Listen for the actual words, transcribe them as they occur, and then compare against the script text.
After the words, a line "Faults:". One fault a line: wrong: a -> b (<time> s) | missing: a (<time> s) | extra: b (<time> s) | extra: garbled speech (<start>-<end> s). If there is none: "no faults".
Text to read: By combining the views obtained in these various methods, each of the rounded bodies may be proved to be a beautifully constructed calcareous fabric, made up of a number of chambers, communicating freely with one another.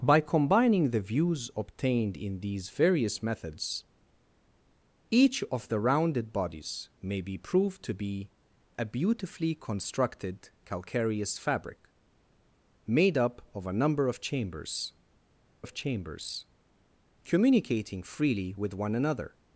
By combining the views obtained in these various methods, each of the rounded bodies may be proved to be a beautifully constructed calcareous fabric, made up of a number of chambers of chambers, communicating freely with one another.
Faults:
extra: of chambers (15.6 s)